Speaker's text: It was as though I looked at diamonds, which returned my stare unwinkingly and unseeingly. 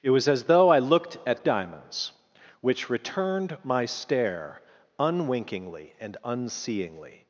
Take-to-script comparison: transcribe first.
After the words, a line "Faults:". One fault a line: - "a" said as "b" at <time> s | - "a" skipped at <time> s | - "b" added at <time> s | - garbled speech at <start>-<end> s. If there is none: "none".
It was as though I looked at diamonds, which returned my stare unwinkingly and unseeingly.
Faults:
none